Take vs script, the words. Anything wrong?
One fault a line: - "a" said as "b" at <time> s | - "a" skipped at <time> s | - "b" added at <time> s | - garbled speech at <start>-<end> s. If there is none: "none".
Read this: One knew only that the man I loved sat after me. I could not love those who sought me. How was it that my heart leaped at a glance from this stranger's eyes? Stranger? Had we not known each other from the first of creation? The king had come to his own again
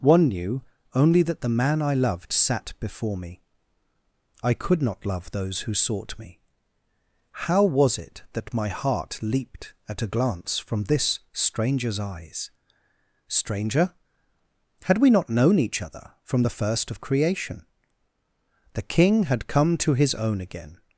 - "after" said as "before" at 2.8 s